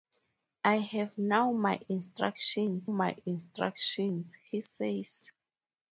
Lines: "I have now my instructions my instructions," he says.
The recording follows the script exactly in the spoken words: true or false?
true